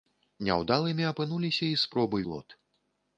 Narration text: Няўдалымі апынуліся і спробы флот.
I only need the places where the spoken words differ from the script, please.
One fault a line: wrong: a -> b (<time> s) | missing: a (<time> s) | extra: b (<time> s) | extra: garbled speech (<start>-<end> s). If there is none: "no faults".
no faults